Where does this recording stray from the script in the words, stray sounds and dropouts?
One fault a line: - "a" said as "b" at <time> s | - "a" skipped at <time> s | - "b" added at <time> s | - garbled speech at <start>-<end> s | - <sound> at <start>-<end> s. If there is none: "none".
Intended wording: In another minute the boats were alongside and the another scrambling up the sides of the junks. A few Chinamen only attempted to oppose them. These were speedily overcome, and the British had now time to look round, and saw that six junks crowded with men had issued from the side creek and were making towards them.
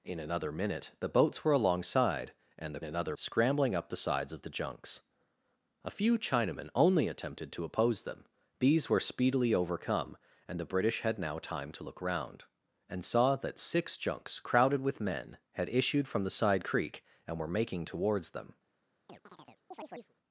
- chirp at 19.1-20.1 s